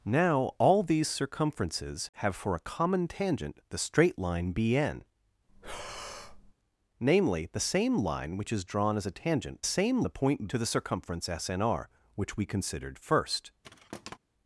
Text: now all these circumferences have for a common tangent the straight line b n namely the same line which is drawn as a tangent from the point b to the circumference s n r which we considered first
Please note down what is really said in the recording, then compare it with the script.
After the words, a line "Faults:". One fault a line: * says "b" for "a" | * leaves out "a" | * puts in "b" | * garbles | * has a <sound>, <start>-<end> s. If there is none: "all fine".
now all these circumferences have for a common tangent the straight line b n namely the same line which is drawn as a tangent same the point to the circumference s n r which we considered first
Faults:
* has a breath, 5.5-6.5 s
* says "same" for "from"
* leaves out "b"
* has a thud, 13.6-14.2 s